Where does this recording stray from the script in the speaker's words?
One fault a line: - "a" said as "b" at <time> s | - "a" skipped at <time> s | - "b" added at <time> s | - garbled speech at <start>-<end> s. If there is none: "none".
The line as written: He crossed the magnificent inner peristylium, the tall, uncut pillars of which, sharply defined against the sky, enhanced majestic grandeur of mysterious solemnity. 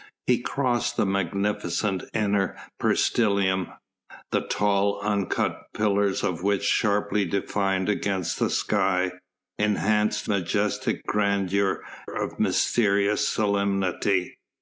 none